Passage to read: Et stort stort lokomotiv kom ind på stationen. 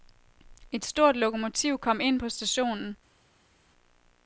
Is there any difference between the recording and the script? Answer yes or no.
yes